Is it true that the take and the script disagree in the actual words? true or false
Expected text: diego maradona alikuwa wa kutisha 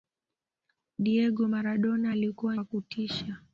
false